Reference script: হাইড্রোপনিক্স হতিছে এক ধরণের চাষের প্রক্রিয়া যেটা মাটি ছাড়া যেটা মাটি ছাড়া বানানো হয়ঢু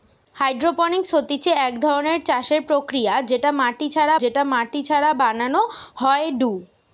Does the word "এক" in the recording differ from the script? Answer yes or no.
no